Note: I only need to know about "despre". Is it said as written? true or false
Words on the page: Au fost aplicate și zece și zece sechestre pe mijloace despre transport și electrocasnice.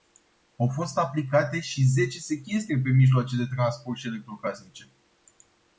false